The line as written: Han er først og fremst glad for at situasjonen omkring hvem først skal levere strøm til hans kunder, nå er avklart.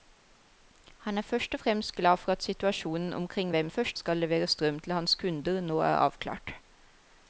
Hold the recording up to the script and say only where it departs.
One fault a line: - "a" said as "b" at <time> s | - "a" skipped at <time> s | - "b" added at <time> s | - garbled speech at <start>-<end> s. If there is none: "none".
none